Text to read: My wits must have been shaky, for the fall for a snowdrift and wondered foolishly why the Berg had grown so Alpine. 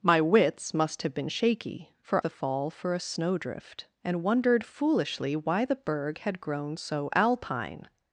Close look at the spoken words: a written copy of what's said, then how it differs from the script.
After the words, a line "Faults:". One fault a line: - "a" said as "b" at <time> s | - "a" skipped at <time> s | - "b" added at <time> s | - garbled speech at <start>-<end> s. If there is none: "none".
My wits must have been shaky, for the fall for a snowdrift and wondered foolishly why the Berg had grown so Alpine.
Faults:
none